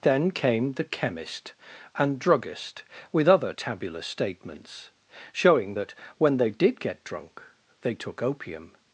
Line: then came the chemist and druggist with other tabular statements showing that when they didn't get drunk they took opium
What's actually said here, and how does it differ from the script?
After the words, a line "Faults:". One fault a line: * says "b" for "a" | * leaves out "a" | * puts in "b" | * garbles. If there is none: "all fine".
then came the chemist and druggist with other tabular statements showing that when they did get drunk they took opium
Faults:
* says "did" for "didn't"